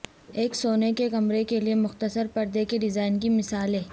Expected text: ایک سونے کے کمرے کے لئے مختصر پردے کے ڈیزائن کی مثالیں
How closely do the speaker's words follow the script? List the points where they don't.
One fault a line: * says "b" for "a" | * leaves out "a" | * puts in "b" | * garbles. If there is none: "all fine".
all fine